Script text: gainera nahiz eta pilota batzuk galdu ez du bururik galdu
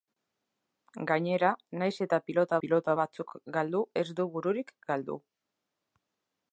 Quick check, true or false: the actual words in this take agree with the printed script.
false